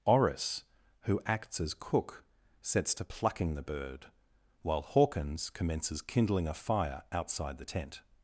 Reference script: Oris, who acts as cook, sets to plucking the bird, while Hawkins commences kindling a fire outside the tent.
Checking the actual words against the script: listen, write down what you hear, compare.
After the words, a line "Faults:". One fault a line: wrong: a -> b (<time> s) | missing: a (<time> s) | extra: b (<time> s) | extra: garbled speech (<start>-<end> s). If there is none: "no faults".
Oris, who acts as cook, sets to plucking the bird, while Hawkins commences kindling a fire outside the tent.
Faults:
no faults